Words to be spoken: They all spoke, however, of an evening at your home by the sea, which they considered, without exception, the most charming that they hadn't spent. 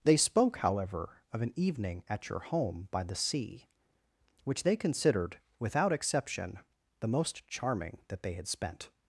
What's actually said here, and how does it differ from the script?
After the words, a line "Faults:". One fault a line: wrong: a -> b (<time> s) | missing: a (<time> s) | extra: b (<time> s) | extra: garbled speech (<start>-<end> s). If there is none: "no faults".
They spoke, however, of an evening at your home by the sea, which they considered, without exception, the most charming that they had spent.
Faults:
missing: all (0.2 s)
wrong: hadn't -> had (8.3 s)